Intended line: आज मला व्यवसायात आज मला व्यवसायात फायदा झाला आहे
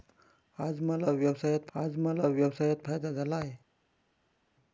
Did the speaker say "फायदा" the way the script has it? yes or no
yes